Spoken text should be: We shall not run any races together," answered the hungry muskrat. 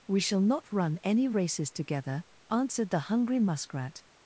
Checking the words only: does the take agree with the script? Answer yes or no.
yes